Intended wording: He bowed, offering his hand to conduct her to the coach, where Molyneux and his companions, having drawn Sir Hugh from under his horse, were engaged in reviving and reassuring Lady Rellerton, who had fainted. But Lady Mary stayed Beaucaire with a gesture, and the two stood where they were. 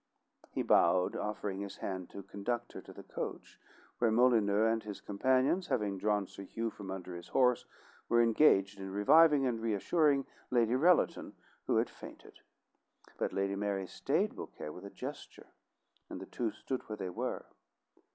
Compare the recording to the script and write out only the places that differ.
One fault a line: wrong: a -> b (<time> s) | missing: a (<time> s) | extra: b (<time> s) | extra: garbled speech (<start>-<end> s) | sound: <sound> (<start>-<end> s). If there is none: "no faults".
no faults